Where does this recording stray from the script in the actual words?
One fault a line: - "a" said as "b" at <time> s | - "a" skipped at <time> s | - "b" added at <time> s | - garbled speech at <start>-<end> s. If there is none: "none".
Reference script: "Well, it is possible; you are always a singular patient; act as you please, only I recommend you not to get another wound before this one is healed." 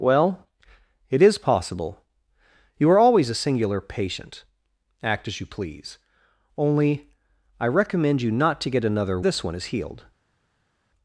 - "wound before" skipped at 9.2 s